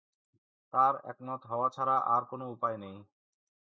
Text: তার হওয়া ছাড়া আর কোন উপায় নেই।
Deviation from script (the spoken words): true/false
true